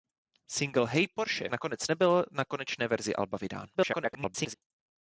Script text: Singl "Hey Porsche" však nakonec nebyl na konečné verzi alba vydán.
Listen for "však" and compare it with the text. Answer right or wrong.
wrong